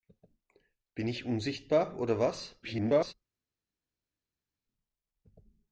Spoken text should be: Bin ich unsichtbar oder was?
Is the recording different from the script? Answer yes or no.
yes